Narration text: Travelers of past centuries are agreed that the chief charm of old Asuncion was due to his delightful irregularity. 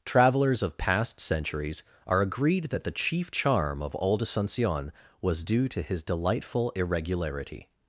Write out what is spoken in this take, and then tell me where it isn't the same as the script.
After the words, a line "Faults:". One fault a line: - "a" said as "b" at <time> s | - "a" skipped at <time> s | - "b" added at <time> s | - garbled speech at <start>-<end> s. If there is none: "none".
Travelers of past centuries are agreed that the chief charm of old Asuncion was due to his delightful irregularity.
Faults:
none